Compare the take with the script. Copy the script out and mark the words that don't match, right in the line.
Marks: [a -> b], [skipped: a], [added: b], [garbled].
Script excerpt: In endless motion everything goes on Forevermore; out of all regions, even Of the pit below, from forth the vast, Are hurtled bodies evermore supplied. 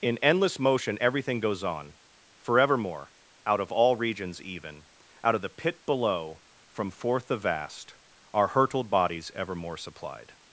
In endless motion everything goes on Forevermore; out of all regions, even [added: Out] Of the pit below, from forth the vast, Are hurtled bodies evermore supplied.